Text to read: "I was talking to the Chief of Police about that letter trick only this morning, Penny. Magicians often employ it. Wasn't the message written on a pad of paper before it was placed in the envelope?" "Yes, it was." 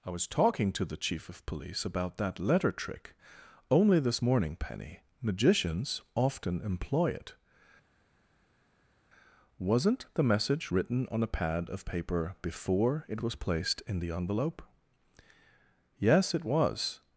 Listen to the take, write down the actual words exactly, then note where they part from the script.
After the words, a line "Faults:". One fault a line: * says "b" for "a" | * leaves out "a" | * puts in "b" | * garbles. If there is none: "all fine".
"I was talking to the Chief of Police about that letter trick only this morning, Penny. Magicians often employ it. Wasn't the message written on a pad of paper before it was placed in the envelope?" "Yes, it was."
Faults:
all fine